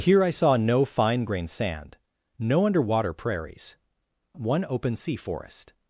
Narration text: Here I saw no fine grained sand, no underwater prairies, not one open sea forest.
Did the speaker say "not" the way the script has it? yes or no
no